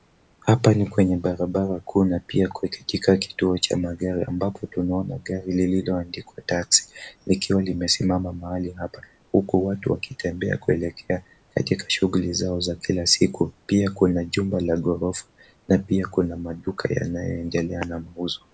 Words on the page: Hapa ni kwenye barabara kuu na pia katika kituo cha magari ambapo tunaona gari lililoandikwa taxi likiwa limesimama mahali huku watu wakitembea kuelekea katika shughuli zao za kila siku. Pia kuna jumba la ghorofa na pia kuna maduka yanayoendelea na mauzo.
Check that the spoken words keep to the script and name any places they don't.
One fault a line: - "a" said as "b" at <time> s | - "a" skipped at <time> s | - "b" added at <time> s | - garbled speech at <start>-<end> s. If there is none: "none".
- "hapa" added at 8.7 s